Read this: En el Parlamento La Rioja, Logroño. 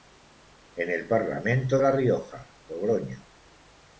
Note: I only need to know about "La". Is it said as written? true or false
true